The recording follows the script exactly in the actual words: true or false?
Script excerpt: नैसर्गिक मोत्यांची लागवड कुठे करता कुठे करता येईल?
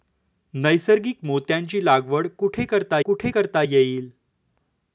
true